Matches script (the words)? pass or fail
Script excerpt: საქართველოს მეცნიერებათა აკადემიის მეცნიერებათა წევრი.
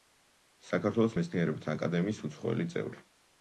fail